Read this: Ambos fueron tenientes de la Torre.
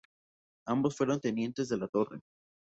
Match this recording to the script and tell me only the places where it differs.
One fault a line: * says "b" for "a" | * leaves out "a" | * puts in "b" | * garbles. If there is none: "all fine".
all fine